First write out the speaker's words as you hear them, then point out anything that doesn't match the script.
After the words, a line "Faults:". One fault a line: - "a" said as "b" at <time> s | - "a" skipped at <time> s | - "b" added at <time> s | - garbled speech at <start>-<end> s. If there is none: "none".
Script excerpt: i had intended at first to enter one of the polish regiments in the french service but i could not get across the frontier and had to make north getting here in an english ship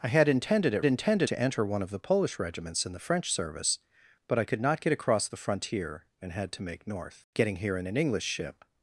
i had intended at intended to enter one of the polish regiments in the french service but i could not get across the frontier and had to make north getting here in an english ship
Faults:
- "first" said as "intended" at 0.8 s